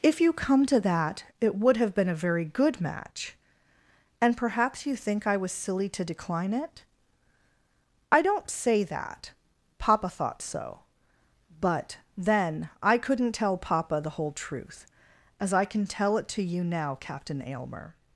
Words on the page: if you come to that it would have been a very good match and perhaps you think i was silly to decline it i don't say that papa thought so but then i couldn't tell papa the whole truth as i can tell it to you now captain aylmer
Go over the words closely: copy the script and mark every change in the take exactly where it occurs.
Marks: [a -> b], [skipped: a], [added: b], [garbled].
if you come to that it would have been a very good match and perhaps you think i was silly to decline it i don't say that papa thought so but then i couldn't tell papa the whole truth as i can tell it to you now captain aylmer